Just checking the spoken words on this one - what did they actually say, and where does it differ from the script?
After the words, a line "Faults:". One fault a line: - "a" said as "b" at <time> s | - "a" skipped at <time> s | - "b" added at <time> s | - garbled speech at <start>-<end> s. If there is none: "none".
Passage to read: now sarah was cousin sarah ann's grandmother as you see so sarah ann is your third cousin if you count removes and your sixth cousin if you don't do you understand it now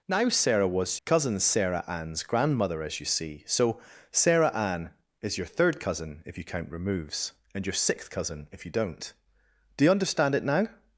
now sarah was cousin sarah ann's grandmother as you see so sarah ann is your third cousin if you count removes and your sixth cousin if you don't do you understand it now
Faults:
none